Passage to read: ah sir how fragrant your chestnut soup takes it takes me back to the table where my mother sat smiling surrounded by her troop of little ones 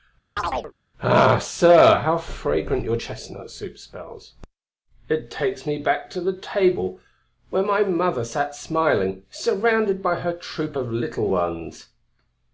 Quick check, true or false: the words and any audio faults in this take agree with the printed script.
false